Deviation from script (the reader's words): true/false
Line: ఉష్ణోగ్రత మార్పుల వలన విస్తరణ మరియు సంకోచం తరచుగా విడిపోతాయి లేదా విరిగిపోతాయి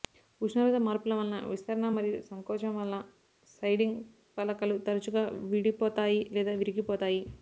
true